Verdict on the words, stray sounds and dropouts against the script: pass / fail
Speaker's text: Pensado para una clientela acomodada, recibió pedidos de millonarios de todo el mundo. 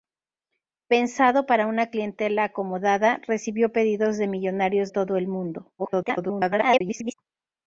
fail